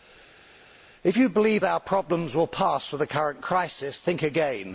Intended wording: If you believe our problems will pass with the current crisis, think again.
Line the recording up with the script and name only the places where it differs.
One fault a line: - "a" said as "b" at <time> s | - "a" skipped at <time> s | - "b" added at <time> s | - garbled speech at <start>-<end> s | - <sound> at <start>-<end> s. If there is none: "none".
none